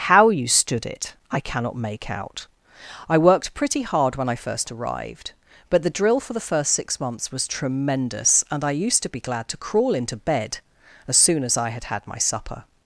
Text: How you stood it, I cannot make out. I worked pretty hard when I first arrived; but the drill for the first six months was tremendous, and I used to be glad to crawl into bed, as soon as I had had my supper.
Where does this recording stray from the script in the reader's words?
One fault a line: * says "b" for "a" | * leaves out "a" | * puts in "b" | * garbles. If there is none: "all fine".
all fine